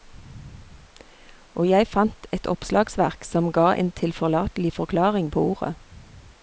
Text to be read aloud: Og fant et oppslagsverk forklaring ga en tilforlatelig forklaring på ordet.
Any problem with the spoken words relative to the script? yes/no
yes